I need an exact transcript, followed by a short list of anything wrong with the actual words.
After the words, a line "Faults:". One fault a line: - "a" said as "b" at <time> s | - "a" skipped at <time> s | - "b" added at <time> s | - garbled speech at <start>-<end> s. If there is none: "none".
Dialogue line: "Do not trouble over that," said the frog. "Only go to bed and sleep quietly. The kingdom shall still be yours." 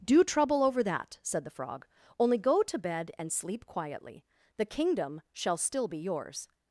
"Do trouble over that," said the frog. "Only go to bed and sleep quietly. The kingdom shall still be yours."
Faults:
- "not" skipped at 0.2 s